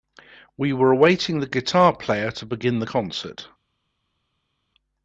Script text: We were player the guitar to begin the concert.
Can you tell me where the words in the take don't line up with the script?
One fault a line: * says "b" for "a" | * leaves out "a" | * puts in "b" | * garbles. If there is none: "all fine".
* says "awaiting" for "player"
* puts in "player"